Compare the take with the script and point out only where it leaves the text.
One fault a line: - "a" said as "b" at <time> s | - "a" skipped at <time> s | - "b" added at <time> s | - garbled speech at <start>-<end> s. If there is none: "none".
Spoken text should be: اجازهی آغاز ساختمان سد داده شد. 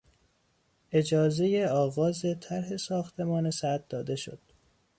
- "طرح" added at 2.4 s